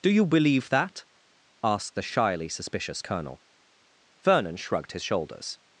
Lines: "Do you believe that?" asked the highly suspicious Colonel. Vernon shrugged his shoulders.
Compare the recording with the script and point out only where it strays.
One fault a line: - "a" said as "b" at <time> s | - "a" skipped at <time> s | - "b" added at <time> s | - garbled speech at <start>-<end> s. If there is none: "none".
- "highly" said as "shyly" at 2.0 s